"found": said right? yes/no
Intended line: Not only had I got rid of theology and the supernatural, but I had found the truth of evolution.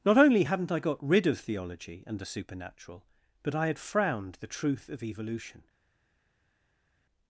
no